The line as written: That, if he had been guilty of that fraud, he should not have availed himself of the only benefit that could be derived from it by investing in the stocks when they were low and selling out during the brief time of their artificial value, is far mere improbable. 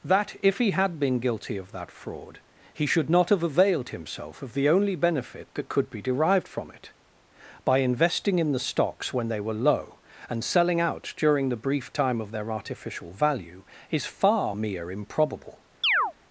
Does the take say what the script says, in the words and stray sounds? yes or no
no